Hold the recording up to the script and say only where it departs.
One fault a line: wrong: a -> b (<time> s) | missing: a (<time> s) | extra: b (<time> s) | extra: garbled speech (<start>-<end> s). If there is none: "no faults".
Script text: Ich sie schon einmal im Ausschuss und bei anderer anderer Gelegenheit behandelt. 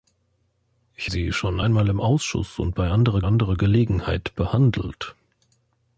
no faults